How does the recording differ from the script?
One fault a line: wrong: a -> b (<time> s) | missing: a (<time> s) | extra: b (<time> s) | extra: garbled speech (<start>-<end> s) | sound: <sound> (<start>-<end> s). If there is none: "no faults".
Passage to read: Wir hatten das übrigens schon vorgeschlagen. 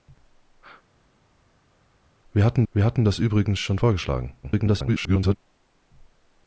extra: wir hatten (2.7 s)
extra: garbled speech (4.4-5.4 s)